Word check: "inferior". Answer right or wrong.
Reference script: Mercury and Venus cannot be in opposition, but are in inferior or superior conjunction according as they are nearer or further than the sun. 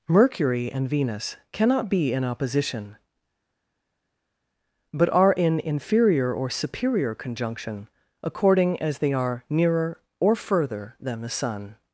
right